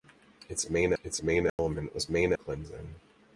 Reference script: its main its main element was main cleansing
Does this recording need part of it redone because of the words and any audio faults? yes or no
yes